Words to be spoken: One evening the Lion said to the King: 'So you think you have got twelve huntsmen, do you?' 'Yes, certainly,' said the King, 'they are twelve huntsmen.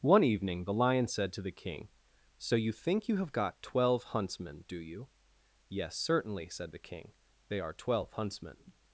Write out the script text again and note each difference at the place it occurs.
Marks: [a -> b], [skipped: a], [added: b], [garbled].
One evening the Lion said to the King: 'So you think you have got twelve huntsmen, do you?' 'Yes, certainly,' said the King, 'they are twelve huntsmen.